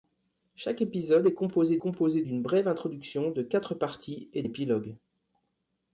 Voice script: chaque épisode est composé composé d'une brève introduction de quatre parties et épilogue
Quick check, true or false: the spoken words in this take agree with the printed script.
true